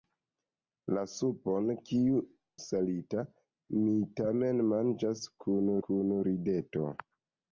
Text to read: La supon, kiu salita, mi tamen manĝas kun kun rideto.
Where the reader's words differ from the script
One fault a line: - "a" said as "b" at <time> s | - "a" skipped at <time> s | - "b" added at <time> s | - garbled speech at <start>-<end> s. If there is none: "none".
none